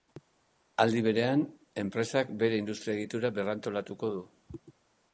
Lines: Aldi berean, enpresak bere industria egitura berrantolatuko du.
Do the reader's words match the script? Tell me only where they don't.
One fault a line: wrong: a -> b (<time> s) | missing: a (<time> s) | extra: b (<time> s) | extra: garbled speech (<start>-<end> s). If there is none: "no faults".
no faults